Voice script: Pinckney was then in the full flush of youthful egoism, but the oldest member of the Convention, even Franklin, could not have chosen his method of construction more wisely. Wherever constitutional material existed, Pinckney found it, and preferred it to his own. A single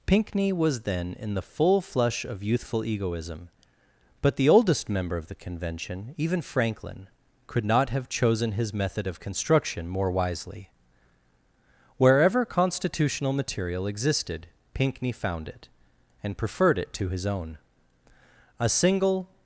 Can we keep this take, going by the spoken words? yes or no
yes